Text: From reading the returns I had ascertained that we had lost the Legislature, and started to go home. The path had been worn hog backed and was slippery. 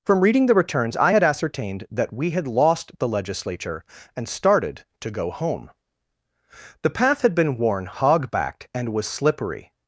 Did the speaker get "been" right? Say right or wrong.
right